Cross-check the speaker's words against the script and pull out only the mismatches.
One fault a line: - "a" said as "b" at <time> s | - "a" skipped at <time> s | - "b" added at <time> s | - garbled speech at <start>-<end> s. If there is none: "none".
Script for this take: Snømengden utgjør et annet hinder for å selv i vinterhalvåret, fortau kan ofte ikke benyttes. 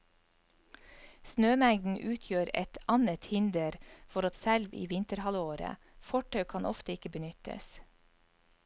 none